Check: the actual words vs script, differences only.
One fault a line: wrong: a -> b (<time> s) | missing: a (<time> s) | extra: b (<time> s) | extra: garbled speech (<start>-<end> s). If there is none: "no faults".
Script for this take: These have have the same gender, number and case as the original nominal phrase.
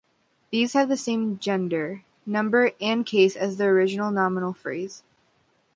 missing: have (0.9 s)